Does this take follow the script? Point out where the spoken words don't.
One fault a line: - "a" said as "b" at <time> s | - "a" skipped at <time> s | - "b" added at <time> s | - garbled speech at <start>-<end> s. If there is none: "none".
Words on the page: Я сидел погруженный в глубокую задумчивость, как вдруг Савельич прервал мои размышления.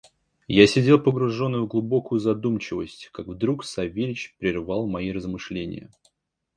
none